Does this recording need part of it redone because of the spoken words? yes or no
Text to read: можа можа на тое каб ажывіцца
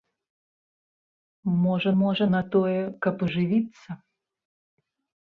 no